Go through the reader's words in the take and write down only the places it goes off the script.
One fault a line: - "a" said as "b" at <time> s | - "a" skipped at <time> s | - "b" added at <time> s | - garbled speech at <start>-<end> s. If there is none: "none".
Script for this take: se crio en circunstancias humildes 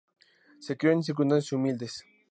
none